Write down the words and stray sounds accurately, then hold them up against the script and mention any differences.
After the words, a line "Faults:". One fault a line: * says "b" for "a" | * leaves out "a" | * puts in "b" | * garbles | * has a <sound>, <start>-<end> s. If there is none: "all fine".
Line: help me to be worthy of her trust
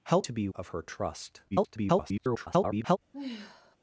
help to be of her trust [garbled]
Faults:
* leaves out "me"
* leaves out "worthy"
* garbles
* has a sigh, 3.1-3.8 s